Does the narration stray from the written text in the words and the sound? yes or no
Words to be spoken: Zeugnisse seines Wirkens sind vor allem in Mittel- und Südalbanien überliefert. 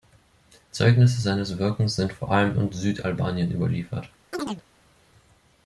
yes